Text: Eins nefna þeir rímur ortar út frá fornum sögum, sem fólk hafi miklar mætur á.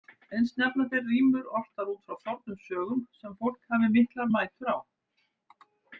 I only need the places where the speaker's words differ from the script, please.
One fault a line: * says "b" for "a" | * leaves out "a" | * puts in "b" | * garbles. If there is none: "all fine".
all fine